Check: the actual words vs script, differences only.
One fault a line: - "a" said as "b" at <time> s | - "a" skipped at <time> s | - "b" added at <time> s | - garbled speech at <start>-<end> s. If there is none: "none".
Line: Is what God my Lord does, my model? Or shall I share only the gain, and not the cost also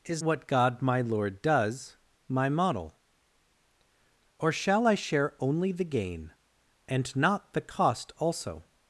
none